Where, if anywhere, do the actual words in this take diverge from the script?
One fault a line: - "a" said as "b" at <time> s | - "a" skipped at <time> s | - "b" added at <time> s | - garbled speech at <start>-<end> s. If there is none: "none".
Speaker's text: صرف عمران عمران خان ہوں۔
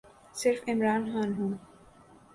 - "عمران" skipped at 1.0 s